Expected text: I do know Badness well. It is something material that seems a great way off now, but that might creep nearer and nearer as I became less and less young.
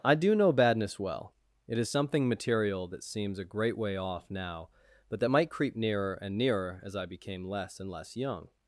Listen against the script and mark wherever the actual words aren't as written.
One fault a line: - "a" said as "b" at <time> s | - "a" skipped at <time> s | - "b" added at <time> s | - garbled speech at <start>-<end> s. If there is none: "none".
none